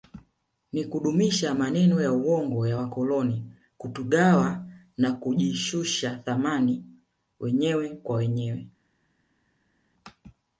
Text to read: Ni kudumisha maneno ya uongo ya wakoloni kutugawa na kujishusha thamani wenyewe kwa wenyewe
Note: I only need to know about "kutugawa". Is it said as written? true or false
true